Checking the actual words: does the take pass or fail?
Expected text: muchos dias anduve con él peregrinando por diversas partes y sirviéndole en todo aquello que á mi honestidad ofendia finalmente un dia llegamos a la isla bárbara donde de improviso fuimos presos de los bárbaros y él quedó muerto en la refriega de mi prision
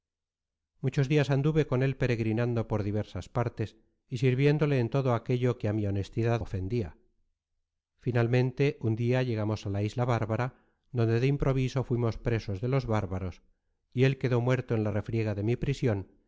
pass